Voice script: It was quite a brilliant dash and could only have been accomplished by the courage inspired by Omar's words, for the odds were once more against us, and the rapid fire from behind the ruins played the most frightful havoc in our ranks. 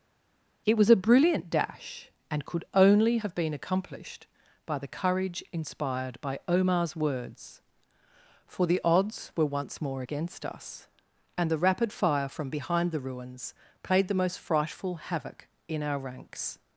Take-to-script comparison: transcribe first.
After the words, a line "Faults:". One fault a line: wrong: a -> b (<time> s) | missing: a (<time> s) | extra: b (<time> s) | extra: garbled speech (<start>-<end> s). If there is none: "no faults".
It was a brilliant dash and could only have been accomplished by the courage inspired by Omar's words, for the odds were once more against us, and the rapid fire from behind the ruins played the most frightful havoc in our ranks.
Faults:
missing: quite (0.9 s)